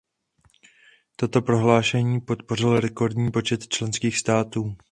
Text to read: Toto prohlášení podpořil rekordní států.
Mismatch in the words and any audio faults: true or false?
true